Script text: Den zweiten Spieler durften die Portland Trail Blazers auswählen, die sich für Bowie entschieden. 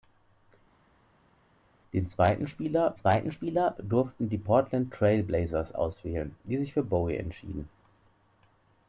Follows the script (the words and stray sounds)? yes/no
no